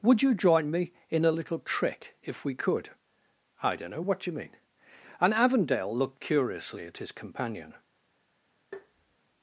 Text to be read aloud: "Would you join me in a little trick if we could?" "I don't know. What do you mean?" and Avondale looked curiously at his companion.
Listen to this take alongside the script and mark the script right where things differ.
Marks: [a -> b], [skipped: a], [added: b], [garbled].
"Would you join me in a little trick if we could?" "I don't know. What do you mean?" and Avondale looked curiously at his companion.